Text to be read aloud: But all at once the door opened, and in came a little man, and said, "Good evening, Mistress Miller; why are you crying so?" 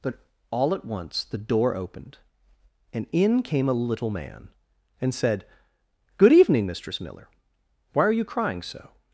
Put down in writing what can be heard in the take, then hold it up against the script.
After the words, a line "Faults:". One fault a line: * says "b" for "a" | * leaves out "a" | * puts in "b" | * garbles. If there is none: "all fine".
But all at once the door opened, and in came a little man, and said, "Good evening, Mistress Miller; why are you crying so?"
Faults:
all fine